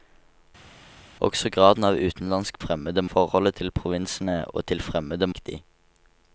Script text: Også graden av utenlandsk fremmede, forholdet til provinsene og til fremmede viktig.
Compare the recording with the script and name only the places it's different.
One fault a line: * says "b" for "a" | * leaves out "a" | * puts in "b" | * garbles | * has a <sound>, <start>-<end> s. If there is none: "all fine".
all fine